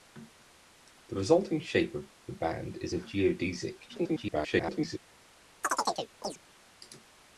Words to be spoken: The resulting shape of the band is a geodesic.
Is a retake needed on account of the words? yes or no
yes